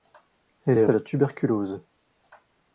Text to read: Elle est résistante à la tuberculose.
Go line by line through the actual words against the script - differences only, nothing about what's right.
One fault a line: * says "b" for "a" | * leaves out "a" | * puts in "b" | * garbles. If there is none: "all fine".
* leaves out "résistante"